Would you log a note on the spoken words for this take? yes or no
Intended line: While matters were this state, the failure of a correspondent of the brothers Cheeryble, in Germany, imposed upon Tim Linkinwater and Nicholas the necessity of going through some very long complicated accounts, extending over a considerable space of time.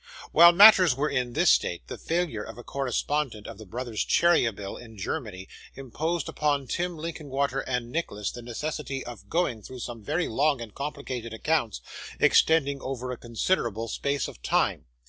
yes